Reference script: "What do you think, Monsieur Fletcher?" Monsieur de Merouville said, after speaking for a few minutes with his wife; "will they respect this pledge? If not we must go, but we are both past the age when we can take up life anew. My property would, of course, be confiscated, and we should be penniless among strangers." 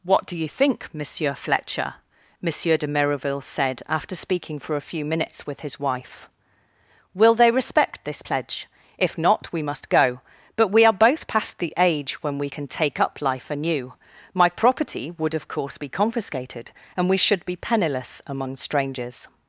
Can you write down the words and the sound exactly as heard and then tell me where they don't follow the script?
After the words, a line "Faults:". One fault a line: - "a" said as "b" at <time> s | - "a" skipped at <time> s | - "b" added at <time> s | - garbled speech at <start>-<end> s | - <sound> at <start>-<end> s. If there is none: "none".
"What do you think, Monsieur Fletcher?" Monsieur de Merouville said, after speaking for a few minutes with his wife; "will they respect this pledge? If not we must go, but we are both past the age when we can take up life anew. My property would, of course, be confiscated, and we should be penniless among strangers."
Faults:
none